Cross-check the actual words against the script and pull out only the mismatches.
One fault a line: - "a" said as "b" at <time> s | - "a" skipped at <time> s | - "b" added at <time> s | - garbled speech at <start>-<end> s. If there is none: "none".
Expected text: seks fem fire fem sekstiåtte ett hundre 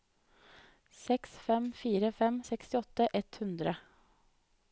none